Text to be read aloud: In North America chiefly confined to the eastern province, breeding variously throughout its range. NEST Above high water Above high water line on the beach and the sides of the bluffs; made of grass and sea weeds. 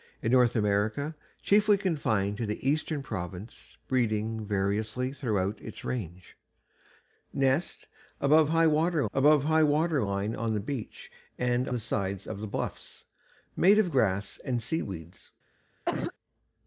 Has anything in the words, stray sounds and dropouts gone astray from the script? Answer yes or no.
yes